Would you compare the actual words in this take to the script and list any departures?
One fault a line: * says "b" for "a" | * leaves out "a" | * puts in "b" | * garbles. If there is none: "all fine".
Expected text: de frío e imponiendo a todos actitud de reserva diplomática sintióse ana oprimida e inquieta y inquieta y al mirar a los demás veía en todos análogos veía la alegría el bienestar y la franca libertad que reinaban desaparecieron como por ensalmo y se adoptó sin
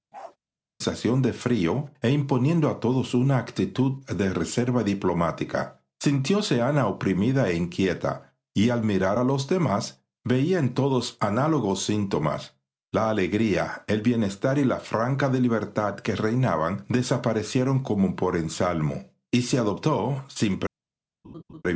* puts in "una"
* leaves out "inquieta y"
* says "síntomas" for "veía"